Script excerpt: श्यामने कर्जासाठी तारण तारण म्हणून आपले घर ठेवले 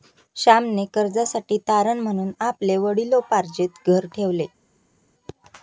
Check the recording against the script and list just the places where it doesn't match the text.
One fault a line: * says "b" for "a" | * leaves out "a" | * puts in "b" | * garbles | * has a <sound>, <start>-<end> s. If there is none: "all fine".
* leaves out "तारण"
* puts in "वडिलोपार्जित"